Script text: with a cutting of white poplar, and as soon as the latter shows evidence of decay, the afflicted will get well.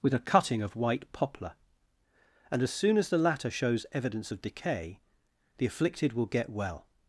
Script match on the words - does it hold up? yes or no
yes